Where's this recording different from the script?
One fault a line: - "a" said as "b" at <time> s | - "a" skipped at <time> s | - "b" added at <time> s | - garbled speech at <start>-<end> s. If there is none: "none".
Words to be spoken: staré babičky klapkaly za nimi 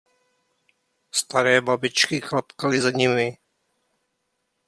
none